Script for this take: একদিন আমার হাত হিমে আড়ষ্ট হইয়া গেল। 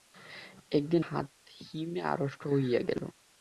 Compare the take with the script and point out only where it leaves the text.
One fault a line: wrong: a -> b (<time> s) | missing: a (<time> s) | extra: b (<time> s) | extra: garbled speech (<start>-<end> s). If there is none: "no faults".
missing: আমার (1.0 s)